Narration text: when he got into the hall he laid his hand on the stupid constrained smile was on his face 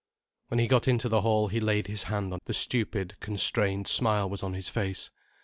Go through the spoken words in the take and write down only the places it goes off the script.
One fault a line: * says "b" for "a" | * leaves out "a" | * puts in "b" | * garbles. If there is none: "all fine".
all fine